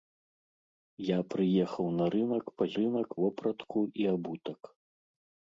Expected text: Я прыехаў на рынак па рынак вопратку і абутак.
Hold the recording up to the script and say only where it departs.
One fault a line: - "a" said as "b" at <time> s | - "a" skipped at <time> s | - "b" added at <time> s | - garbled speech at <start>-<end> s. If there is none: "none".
none